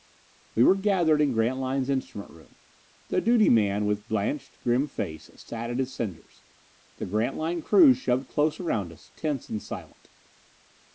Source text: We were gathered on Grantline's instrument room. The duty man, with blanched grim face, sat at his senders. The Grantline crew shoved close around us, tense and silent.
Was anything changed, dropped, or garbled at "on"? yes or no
yes